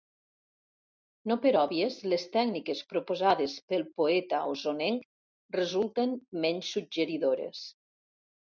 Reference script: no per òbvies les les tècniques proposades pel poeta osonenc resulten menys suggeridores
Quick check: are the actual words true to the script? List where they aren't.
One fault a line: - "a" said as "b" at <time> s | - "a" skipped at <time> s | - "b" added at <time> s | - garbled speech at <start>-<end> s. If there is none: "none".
- "les" skipped at 2.2 s